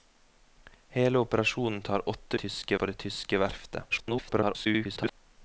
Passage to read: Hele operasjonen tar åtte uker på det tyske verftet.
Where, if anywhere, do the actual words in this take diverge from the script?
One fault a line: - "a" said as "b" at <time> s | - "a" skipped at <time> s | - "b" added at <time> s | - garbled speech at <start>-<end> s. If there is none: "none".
- "uker" said as "tyske" at 2.4 s
- garbled speech at 3.9-5.1 s